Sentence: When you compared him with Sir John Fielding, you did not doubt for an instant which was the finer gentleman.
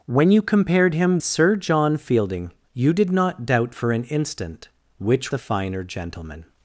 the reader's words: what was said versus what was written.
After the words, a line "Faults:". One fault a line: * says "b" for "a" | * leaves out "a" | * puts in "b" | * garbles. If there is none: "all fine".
When you compared him Sir John Fielding, you did not doubt for an instant which the finer gentleman.
Faults:
* leaves out "with"
* leaves out "was"